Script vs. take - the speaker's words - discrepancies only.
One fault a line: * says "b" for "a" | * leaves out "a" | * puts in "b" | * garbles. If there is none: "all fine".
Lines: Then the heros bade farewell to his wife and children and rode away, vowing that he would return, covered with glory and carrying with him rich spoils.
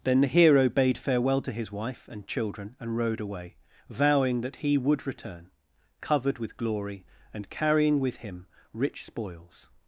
* says "hero" for "heros"